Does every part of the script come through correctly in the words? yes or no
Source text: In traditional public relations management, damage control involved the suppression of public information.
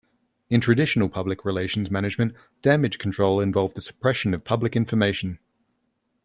yes